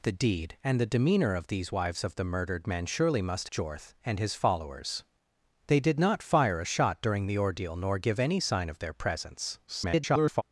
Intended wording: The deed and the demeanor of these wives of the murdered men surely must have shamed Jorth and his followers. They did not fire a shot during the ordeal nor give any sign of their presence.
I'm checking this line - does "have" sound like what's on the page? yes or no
no